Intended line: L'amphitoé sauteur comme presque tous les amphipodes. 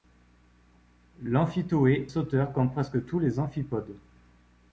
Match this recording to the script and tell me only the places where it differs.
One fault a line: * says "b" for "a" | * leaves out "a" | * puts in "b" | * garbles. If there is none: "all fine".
all fine